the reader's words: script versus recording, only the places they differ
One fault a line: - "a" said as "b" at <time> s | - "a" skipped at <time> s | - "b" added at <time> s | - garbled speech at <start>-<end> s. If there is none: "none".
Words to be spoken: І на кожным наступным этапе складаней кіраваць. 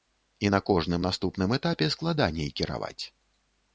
none